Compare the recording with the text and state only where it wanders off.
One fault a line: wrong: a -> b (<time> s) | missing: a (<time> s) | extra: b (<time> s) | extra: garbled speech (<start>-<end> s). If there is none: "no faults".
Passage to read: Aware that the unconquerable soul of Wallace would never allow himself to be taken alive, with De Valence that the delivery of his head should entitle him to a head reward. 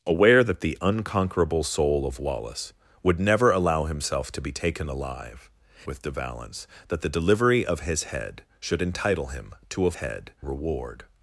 no faults